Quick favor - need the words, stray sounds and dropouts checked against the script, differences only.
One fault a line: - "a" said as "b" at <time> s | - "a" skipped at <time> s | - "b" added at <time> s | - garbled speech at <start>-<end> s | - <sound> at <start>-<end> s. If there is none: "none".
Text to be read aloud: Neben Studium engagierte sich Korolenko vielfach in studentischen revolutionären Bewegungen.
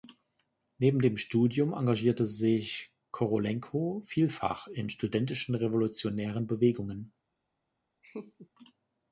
- "dem" added at 1.0 s
- laugh at 8.0-8.5 s